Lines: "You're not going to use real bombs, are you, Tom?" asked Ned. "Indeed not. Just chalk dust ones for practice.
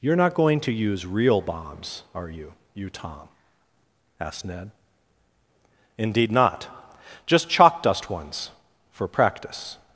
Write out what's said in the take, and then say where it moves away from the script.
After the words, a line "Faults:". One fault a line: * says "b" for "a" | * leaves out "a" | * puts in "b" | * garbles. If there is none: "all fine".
"You're not going to use real bombs, are you you, Tom?" asked Ned. "Indeed not. Just chalk dust ones for practice.
Faults:
* puts in "you"